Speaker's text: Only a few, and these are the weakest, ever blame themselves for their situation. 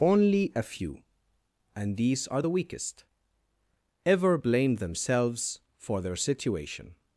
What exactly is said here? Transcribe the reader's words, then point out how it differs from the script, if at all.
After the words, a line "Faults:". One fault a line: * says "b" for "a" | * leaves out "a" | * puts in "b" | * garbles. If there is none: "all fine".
Only a few, and these are the weakest, ever blame themselves for their situation.
Faults:
all fine